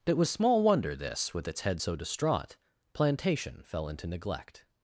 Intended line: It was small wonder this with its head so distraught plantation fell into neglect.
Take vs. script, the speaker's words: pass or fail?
pass